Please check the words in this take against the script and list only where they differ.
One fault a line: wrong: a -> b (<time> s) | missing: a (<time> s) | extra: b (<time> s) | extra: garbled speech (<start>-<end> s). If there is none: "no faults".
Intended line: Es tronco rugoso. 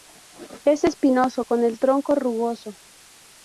extra: espinoso con el (0.8 s)